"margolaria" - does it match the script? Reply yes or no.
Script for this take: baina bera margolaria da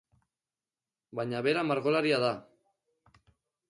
yes